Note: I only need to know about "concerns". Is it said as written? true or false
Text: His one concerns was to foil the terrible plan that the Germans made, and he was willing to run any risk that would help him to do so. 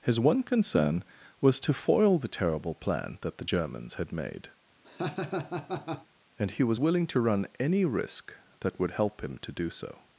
false